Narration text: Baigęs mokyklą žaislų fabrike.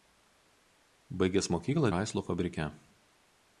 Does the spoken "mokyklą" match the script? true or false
true